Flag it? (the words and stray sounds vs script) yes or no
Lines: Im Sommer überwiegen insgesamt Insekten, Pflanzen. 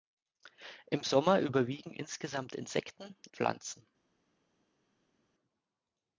no